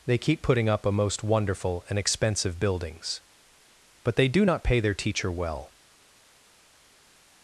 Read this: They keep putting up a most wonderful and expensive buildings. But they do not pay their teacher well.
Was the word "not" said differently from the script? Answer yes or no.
no